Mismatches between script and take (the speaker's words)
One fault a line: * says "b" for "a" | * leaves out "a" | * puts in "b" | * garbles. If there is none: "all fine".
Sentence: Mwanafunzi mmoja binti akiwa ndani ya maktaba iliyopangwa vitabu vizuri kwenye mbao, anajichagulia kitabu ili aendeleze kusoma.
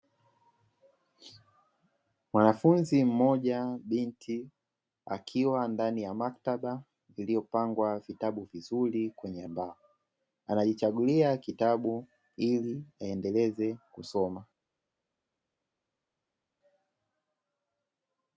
all fine